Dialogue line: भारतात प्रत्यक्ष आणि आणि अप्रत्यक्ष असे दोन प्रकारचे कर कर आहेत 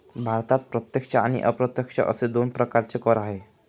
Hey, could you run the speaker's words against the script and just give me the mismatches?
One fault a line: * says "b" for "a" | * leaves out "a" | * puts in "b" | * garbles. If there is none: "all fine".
* leaves out "आणि"
* leaves out "कर"